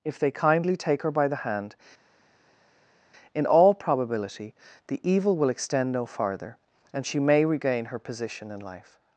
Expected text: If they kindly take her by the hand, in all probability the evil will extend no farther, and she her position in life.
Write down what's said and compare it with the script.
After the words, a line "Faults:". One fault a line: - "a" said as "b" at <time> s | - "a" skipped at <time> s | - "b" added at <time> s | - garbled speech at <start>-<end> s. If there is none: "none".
If they kindly take her by the hand, in all probability the evil will extend no farther, and she may regain her position in life.
Faults:
- "may regain" added at 7.2 s